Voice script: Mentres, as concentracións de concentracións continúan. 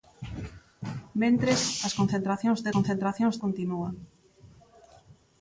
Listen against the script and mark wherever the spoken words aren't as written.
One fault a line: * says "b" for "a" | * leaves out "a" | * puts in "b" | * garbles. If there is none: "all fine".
all fine